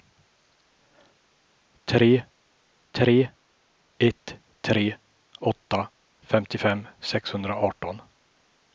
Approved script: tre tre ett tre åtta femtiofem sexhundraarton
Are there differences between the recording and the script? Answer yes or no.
no